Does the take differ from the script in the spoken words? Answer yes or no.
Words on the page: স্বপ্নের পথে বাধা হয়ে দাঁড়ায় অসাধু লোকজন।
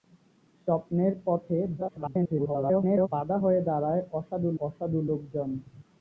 yes